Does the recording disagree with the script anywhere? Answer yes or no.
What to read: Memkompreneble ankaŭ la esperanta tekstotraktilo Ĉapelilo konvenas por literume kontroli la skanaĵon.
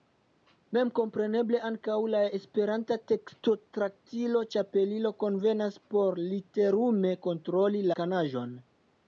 yes